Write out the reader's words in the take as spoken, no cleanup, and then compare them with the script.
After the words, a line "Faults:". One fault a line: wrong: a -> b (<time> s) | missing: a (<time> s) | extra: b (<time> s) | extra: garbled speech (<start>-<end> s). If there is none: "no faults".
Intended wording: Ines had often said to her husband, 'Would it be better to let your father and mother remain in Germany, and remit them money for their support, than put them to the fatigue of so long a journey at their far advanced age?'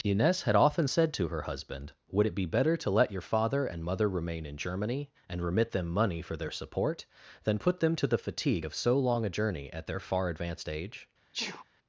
Ines had often said to her husband, 'Would it be better to let your father and mother remain in Germany, and remit them money for their support, than put them to the fatigue of so long a journey at their far advanced age?'
Faults:
no faults